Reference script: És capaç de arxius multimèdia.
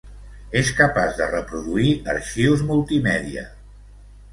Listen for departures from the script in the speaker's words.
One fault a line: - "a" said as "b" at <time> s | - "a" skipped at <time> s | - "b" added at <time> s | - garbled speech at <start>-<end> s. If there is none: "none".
- "reproduir" added at 1.4 s